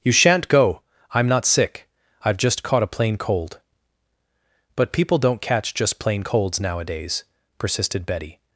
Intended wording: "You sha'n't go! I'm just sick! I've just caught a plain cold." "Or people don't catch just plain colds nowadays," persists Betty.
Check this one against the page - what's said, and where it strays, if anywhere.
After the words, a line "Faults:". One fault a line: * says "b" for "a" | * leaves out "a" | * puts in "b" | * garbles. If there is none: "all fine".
"You sha'n't go! I'm not sick! I've just caught a plain cold." "But people don't catch just plain colds nowadays," persisted Betty.
Faults:
* says "not" for "just"
* says "But" for "Or"
* says "persisted" for "persists"